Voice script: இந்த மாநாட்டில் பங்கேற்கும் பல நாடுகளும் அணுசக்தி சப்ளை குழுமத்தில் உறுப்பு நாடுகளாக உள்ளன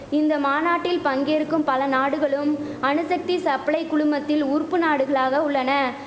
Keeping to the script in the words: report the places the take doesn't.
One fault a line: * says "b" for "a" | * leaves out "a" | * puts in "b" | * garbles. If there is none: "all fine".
all fine